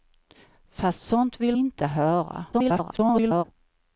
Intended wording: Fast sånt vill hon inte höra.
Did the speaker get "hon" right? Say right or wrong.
wrong